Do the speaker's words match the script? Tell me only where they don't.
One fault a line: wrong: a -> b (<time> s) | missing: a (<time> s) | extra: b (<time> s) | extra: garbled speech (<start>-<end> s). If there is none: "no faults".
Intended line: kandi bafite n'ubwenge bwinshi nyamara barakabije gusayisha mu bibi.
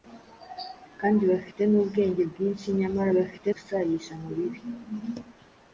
wrong: barakabije -> bafite (3.2 s)